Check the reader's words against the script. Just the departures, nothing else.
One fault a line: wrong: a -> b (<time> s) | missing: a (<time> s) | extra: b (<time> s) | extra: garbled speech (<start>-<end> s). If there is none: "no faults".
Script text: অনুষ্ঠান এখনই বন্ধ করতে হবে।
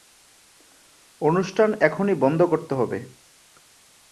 no faults